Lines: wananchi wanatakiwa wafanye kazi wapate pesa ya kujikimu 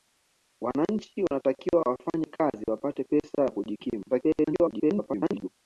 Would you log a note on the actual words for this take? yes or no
yes